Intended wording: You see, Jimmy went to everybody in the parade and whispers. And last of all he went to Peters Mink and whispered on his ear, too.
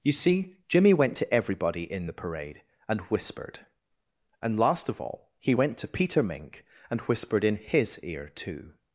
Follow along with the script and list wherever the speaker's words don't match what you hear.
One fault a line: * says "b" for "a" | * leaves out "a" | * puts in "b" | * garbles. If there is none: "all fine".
* says "whispered" for "whispers"
* says "Peter" for "Peters"
* says "in" for "on"